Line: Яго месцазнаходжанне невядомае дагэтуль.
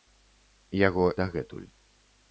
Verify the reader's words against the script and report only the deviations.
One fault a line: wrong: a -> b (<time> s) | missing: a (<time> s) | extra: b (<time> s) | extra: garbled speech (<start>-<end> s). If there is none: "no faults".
missing: месцазнаходжанне невядомае (1.0 s)